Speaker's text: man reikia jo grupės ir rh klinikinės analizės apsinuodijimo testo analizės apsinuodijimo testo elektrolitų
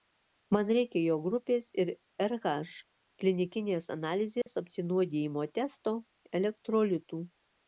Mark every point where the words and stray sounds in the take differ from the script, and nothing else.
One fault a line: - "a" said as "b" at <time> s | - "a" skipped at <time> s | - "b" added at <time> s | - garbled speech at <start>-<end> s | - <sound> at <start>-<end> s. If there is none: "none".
- dropout at 4.4-4.5 s
- "analizės apsinuodijimo testo" skipped at 6.0 s